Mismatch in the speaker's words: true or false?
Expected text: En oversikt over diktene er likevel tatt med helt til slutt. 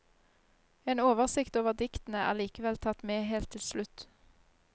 false